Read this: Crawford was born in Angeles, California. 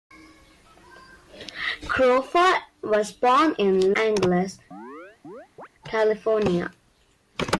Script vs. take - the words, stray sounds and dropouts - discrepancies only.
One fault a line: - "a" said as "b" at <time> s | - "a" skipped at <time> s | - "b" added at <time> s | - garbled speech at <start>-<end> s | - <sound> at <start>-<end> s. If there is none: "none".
- chirp at 4.7-5.7 s